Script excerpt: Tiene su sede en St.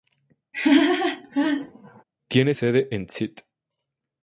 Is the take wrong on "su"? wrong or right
wrong